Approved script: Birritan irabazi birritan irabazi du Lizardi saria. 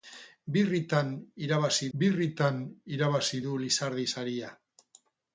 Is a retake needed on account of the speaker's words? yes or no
no